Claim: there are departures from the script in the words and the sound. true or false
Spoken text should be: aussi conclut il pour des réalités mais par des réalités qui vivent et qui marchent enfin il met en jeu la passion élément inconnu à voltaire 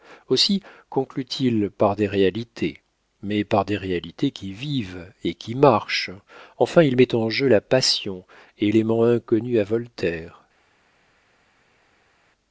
true